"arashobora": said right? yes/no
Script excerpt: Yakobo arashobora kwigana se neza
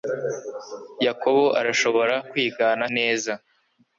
yes